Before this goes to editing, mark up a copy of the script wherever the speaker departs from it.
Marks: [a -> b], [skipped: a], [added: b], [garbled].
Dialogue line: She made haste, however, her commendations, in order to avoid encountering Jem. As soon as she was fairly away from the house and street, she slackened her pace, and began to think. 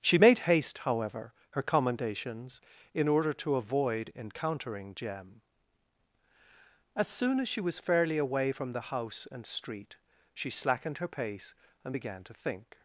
She made haste, however, her commendations, in order to avoid encountering Jem. As soon as she was fairly away from the house and street, she slackened her pace, and began to think.